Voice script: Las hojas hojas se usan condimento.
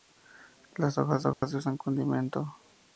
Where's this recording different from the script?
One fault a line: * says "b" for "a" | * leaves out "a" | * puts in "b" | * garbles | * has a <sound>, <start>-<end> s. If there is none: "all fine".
* has a dropout, 1.3-1.4 s